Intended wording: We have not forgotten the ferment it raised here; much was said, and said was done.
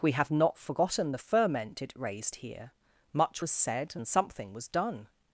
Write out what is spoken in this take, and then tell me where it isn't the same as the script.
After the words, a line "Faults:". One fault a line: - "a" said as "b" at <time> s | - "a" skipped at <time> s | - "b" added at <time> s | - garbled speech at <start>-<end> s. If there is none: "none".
We have not forgotten the ferment it raised here; much was said, and something was done.
Faults:
- "said" said as "something" at 4.1 s